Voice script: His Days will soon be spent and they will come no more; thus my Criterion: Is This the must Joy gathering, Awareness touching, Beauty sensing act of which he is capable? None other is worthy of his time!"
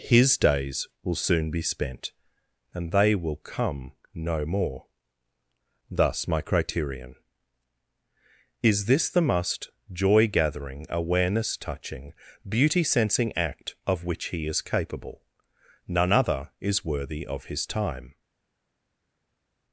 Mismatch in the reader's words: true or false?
false